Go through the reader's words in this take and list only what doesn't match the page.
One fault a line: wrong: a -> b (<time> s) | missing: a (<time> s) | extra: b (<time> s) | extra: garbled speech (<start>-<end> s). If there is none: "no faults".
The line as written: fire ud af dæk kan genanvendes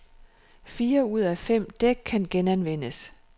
extra: fem (1.4 s)